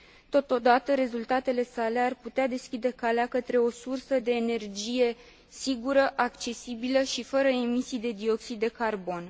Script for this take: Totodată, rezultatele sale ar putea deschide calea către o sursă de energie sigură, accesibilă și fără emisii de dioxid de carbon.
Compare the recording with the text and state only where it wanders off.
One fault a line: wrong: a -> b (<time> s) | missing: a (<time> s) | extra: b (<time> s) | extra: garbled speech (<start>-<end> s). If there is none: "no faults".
no faults